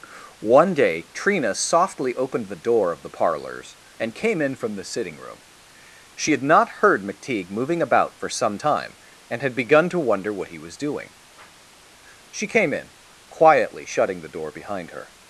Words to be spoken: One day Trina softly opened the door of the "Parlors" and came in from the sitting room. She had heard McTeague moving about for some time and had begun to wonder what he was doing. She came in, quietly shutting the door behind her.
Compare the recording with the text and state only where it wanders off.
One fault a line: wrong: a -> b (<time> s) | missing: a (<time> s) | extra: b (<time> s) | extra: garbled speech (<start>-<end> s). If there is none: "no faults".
extra: not (6.4 s)